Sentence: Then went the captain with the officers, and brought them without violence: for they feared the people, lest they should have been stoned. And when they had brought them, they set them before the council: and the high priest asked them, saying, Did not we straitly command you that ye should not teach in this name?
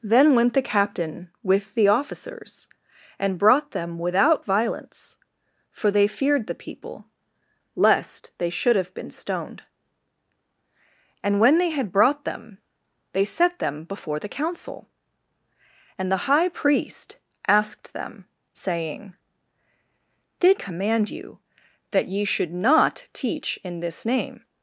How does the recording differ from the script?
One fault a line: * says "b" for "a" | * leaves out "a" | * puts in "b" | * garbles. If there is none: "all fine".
* leaves out "not we straitly"